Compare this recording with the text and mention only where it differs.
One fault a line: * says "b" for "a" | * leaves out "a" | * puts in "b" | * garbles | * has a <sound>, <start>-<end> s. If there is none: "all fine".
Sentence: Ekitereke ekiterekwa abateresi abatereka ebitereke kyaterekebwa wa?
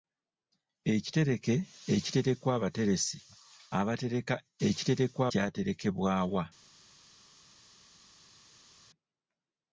* says "ekiterekwa" for "ebitereke"